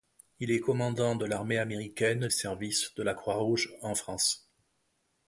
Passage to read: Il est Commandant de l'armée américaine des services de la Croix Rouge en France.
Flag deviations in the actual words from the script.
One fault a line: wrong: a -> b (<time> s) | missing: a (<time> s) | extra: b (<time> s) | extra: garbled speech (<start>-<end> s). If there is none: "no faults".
missing: des (2.3 s)